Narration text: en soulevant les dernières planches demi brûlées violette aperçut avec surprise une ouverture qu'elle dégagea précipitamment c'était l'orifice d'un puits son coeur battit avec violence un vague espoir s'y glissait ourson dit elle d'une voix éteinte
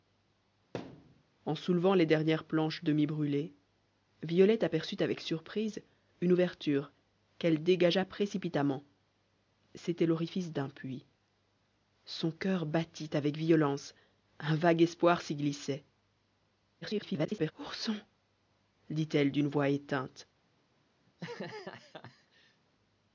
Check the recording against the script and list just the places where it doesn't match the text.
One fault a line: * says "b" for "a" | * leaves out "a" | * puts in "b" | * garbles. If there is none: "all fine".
* garbles